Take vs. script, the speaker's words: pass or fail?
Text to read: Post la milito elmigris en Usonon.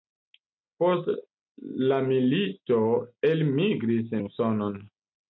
pass